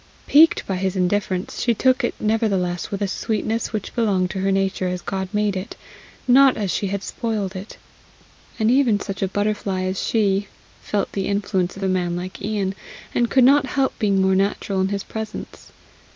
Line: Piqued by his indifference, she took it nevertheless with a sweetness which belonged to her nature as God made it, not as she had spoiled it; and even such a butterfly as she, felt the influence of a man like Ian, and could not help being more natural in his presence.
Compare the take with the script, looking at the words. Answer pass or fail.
pass